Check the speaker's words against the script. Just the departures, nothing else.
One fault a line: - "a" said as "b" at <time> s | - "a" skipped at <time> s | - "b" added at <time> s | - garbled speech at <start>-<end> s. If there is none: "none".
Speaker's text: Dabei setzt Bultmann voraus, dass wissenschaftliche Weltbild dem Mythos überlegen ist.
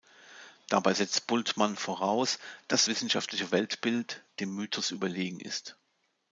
none